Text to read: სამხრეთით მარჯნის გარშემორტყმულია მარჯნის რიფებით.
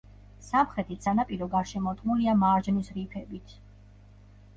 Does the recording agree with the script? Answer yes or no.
no